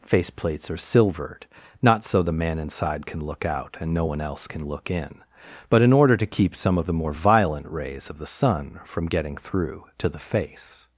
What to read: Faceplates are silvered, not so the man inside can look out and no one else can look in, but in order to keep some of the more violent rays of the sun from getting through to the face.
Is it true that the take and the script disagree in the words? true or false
false